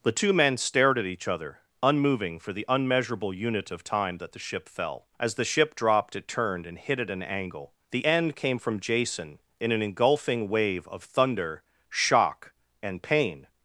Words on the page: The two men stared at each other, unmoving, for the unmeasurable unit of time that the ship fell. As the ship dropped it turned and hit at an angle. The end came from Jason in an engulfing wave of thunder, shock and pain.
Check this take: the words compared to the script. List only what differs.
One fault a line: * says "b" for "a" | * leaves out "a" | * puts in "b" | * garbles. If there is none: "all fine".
all fine